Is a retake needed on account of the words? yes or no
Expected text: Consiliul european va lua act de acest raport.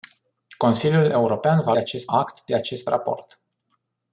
yes